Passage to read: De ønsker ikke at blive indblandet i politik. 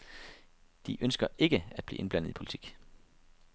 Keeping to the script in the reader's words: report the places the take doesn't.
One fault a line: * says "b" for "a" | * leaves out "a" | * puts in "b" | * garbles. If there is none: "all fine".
all fine